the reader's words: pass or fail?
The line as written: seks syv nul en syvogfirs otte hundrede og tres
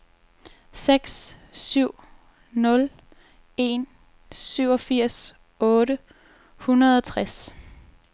pass